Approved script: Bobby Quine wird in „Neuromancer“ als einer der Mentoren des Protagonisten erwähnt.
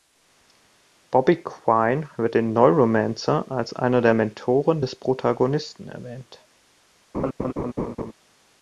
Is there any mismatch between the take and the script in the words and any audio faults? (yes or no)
yes